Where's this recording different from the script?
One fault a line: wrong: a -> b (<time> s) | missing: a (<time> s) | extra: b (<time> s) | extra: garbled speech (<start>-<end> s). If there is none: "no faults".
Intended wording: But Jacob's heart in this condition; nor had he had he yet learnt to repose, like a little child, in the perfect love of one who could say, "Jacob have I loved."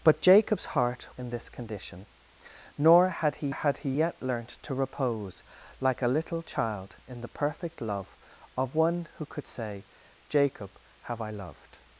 no faults